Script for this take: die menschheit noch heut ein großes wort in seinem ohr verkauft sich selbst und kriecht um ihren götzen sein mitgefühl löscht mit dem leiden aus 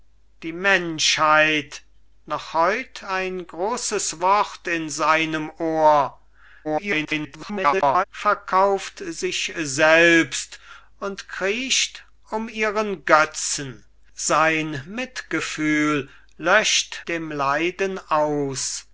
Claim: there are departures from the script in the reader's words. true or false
true